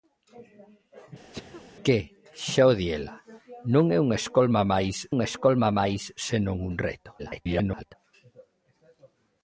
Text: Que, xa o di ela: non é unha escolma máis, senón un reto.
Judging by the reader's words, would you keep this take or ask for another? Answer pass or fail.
fail